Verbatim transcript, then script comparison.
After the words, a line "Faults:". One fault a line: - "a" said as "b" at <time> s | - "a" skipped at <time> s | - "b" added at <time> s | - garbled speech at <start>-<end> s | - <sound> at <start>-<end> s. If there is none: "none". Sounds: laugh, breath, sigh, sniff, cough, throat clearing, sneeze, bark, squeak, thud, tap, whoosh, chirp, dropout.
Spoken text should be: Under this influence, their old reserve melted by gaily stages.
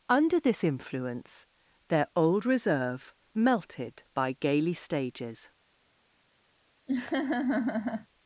Under this influence, their old reserve melted by gaily stages.
Faults:
- laugh at 6.9-8.1 s